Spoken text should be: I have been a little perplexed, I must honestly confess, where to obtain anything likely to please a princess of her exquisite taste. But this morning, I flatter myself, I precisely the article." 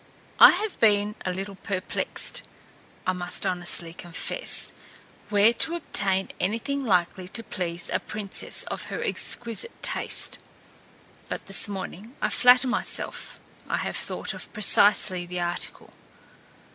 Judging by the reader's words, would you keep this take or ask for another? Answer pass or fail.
fail